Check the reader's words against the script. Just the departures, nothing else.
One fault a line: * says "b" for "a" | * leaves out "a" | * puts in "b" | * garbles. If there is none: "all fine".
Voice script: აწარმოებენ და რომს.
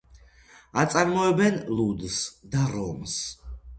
* puts in "ლუდს"